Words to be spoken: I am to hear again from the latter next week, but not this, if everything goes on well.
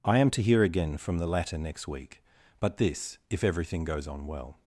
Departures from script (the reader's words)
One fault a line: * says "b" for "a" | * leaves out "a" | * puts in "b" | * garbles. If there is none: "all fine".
* leaves out "not"